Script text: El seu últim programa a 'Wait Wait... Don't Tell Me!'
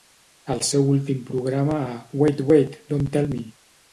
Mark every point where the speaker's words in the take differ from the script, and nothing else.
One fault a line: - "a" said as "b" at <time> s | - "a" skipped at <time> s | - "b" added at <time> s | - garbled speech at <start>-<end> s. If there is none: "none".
none